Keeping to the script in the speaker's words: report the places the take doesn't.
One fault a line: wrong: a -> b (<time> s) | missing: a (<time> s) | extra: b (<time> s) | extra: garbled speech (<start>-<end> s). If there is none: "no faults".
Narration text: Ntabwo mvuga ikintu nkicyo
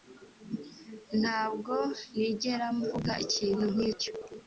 extra: nigera (2.2 s)